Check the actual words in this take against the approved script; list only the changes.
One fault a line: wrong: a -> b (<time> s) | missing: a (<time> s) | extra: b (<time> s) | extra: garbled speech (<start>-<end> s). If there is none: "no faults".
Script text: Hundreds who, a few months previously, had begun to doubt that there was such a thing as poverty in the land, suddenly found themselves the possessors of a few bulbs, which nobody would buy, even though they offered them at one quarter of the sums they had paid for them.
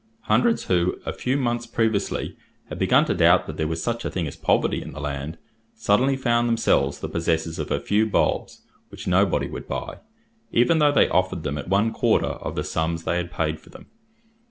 no faults